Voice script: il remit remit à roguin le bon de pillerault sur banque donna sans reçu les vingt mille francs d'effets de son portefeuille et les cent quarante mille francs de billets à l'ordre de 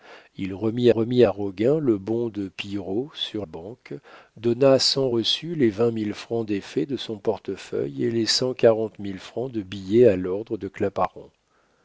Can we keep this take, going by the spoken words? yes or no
yes